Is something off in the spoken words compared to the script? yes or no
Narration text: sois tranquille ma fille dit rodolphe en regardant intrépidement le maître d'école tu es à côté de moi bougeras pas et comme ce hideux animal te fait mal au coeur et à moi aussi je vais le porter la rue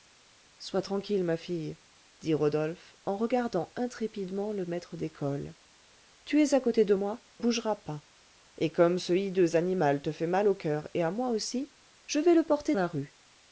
no